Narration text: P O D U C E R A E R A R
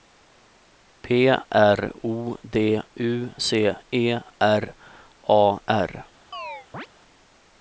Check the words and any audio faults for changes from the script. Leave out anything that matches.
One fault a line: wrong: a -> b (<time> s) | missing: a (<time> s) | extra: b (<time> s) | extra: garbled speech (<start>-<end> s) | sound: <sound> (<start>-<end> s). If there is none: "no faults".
extra: R (1.3 s)
missing: E R A (5.6 s)
sound: chirp (6.3-6.9 s)